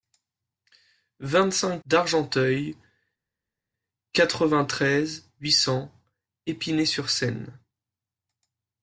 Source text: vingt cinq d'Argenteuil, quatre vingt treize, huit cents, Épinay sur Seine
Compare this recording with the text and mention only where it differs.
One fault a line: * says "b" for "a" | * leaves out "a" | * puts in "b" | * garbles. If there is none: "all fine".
all fine